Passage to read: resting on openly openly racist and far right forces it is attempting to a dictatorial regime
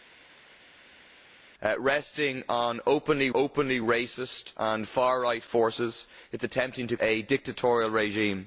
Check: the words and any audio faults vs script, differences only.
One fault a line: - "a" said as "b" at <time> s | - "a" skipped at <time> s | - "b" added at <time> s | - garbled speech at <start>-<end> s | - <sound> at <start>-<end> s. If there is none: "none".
none